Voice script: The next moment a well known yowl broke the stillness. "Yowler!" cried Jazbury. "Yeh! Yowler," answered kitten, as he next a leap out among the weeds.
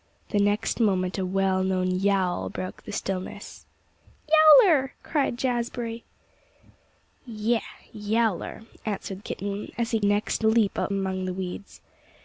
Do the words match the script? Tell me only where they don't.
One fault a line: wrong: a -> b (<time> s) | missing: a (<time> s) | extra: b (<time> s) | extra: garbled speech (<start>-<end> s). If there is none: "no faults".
no faults